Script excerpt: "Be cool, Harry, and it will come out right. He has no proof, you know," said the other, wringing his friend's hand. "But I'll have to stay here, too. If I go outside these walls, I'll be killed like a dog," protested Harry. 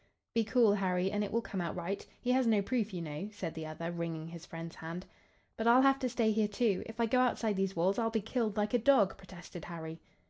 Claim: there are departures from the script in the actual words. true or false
false